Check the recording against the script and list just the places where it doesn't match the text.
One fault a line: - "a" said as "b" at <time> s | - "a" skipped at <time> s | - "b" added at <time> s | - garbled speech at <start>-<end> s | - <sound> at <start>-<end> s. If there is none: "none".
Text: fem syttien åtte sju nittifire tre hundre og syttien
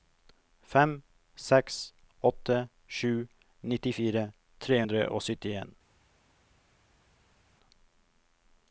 - "syttien" said as "seks" at 1.5 s